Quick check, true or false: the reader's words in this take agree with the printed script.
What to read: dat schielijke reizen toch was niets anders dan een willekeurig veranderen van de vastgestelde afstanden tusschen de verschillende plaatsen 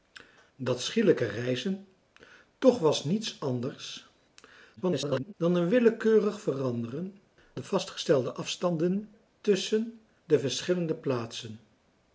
false